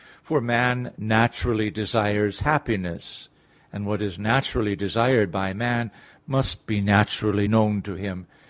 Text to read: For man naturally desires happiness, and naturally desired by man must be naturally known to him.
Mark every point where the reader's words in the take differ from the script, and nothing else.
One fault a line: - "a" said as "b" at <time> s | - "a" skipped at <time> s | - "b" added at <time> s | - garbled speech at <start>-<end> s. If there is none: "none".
- "what is" added at 3.9 s